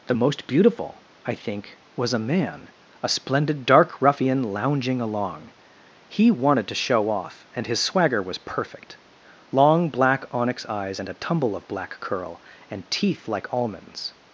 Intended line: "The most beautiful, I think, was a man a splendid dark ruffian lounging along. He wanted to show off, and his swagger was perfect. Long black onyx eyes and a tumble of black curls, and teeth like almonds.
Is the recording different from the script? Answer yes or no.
yes